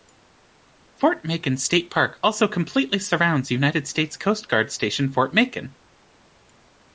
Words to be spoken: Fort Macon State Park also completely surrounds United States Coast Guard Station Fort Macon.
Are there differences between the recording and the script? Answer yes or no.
no